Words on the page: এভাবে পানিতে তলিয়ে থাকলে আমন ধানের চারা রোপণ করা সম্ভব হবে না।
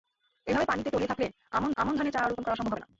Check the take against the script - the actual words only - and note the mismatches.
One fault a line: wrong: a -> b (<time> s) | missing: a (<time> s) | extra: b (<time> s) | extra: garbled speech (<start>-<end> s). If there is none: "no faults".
extra: আমন (1.8 s)